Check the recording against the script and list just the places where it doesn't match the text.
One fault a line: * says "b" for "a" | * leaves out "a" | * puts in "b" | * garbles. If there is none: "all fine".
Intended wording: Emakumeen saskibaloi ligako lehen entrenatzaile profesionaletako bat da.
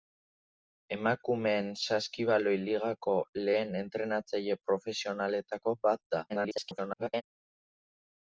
* garbles